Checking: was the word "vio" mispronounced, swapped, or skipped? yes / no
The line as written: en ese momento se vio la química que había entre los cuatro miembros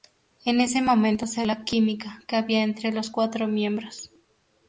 yes